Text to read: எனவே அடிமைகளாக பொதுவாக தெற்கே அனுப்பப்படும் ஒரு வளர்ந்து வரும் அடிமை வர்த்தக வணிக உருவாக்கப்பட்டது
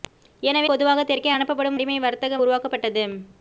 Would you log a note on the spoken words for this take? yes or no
yes